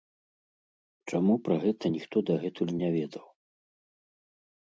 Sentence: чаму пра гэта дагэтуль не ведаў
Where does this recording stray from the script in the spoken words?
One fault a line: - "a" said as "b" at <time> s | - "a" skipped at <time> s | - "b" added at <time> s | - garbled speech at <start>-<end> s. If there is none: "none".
- "ніхто" added at 1.9 s